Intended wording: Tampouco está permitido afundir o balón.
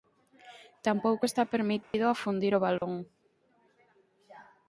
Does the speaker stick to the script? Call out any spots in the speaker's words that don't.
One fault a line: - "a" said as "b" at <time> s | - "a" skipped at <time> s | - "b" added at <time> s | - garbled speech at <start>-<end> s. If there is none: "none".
none